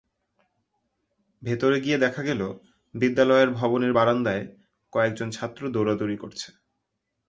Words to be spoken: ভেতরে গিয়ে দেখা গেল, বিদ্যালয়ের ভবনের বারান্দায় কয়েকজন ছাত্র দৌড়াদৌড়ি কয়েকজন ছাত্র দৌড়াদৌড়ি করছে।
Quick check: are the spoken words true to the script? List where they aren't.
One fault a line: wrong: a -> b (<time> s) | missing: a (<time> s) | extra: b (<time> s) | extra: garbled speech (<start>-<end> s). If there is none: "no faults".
missing: কয়েকজন ছাত্র দৌড়াদৌড়ি (6.2 s)